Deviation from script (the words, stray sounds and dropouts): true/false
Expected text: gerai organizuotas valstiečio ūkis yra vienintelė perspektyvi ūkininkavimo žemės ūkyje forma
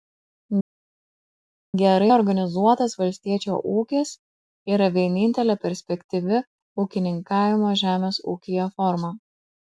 false